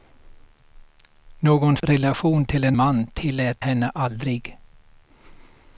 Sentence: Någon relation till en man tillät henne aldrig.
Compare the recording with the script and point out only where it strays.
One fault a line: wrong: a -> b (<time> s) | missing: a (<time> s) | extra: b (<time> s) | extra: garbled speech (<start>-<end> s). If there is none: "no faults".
no faults